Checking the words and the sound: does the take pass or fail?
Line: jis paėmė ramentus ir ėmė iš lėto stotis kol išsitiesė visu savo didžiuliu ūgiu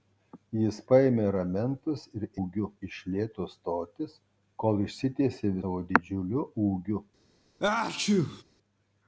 fail